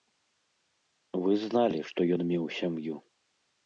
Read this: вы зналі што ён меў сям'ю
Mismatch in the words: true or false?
false